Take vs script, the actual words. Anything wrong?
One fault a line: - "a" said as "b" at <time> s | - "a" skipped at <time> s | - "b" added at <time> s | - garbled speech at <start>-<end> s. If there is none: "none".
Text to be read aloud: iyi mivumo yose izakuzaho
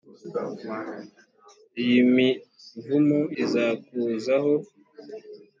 - "yose" skipped at 3.2 s